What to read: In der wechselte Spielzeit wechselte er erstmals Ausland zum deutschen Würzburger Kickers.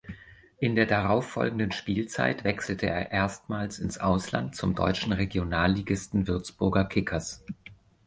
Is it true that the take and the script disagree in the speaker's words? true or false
true